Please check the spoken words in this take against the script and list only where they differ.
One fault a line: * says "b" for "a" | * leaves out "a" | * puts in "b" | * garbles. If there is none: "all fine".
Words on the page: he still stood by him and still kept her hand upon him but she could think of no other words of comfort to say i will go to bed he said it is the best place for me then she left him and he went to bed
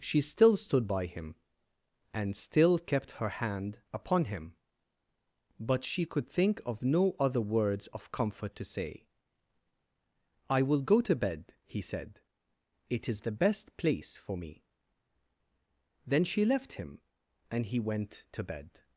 * says "she" for "he"